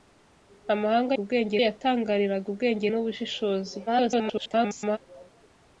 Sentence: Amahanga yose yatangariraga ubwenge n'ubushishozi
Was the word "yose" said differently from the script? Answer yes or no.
yes